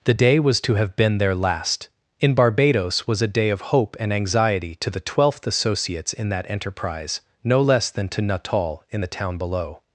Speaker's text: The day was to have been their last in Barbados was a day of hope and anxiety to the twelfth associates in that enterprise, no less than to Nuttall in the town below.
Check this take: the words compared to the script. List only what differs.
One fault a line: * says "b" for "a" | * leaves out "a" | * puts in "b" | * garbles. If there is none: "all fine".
all fine